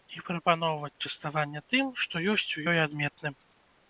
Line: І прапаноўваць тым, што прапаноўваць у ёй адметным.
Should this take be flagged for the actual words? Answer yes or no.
yes